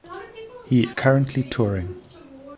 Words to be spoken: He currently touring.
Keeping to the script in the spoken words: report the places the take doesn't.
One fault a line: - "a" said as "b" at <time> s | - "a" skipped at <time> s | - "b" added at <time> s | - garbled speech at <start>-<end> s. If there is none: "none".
none